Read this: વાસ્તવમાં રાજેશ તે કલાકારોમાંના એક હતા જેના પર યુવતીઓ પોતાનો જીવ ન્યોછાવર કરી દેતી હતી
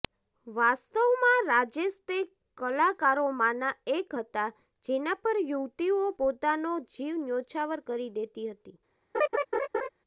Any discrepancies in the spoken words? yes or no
no